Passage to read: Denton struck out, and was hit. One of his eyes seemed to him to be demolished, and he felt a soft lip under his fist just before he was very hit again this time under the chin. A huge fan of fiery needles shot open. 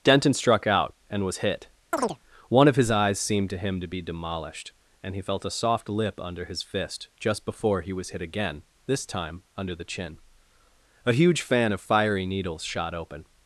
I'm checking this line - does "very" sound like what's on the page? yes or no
no